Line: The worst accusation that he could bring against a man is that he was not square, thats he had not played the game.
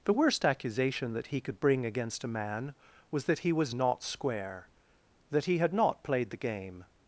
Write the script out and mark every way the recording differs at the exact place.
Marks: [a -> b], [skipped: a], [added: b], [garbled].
The worst accusation that he could bring against a man [is -> was] that he was not square, [thats -> that] he had not played the game.